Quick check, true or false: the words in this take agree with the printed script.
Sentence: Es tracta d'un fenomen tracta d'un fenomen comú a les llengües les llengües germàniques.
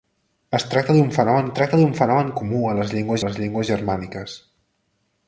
true